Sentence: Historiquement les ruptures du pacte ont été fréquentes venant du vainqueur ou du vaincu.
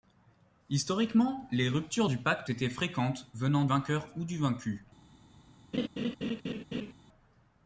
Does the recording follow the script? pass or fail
fail